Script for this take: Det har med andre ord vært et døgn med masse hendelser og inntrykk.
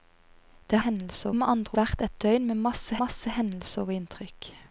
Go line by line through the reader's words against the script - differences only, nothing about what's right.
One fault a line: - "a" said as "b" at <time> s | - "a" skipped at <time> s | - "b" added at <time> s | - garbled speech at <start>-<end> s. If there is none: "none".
- "har" said as "hendelser" at 0.8 s
- "ord" skipped at 1.8 s
- "masse" added at 3.0 s